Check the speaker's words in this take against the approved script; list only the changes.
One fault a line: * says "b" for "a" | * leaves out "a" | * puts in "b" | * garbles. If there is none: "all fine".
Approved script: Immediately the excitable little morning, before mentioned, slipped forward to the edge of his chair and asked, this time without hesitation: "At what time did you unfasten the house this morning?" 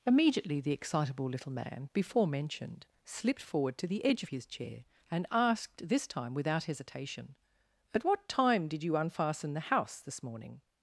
* says "man" for "morning"